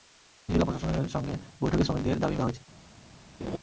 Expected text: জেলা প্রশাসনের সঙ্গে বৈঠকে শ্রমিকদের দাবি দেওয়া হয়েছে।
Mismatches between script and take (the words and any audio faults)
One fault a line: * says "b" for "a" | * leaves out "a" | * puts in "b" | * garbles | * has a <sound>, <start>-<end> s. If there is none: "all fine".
* has a laugh, 3.4-3.6 s